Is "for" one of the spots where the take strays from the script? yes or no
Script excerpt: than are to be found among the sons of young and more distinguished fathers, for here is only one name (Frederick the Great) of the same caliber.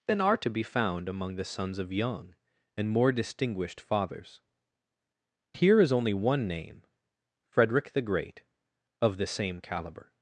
yes